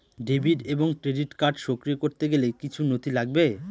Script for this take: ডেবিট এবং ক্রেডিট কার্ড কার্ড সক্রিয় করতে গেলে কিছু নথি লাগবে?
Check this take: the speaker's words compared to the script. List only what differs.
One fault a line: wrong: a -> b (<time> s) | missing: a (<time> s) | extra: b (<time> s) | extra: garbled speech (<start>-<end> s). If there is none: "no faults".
missing: কার্ড (1.6 s)